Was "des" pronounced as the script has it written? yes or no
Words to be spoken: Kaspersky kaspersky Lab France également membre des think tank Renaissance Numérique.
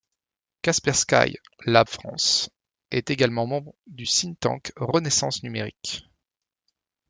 no